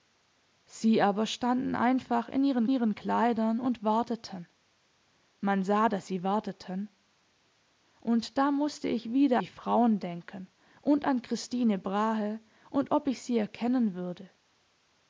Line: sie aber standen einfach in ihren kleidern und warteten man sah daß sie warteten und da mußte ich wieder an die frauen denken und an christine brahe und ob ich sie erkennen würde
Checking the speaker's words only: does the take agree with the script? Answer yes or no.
no